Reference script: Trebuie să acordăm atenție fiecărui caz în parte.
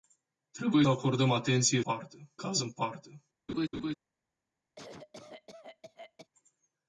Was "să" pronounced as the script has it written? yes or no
no